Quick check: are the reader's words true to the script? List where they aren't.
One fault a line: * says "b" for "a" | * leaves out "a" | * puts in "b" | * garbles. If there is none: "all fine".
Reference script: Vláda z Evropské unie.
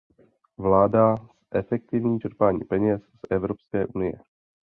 * puts in "zefektivní čerpání peněz"